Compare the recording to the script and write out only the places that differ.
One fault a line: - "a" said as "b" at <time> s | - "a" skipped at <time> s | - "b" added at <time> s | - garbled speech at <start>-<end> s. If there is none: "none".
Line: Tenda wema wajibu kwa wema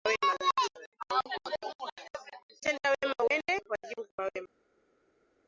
- "uende" added at 3.3 s